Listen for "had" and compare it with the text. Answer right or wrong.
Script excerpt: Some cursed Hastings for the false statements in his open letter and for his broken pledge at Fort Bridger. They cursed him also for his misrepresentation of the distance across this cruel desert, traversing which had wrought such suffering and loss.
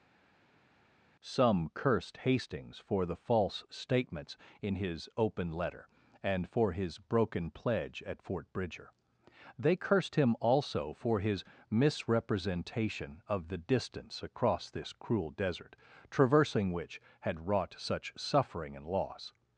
right